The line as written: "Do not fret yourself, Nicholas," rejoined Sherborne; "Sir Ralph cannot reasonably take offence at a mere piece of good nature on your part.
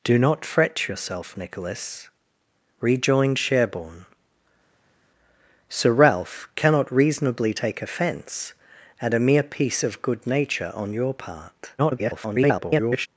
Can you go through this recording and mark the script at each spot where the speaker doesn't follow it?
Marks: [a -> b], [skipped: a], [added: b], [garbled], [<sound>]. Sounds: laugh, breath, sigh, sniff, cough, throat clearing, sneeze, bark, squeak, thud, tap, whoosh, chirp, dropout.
"Do not fret yourself, Nicholas," rejoined Sherborne; "Sir Ralph cannot reasonably take offence at a mere piece of good nature on your part. [garbled]